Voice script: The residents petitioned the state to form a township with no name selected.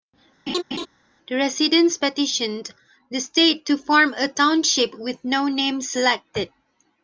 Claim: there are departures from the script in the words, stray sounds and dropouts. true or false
true